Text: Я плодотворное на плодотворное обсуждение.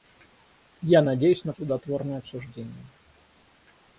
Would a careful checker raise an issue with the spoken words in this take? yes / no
yes